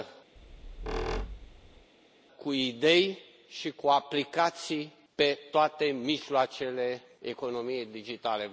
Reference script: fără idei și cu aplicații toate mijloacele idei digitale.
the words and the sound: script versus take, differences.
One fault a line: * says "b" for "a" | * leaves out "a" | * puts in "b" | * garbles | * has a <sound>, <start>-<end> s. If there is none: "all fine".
* has a squeak, 0.4-1.9 s
* says "cu" for "fără"
* puts in "pe"
* says "economiei" for "idei"